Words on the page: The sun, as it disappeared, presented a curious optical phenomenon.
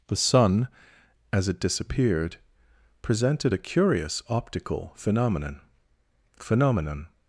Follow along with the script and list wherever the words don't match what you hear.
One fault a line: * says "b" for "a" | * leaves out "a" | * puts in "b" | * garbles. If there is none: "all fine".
* puts in "phenomenon"